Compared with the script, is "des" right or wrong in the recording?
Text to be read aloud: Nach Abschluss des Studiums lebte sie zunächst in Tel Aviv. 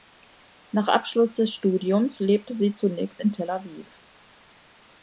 right